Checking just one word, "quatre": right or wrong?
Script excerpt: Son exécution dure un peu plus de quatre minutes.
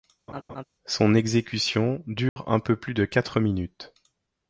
right